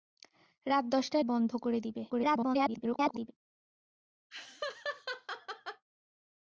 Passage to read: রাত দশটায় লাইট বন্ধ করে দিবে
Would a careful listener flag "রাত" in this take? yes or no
no